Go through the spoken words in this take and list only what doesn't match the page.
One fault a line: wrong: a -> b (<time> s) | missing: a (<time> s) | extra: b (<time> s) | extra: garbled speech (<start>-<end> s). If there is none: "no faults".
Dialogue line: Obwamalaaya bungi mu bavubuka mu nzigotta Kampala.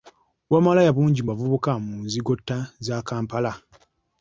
extra: za (2.9 s)